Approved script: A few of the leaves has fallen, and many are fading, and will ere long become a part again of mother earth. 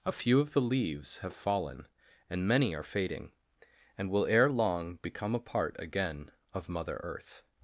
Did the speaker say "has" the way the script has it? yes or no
no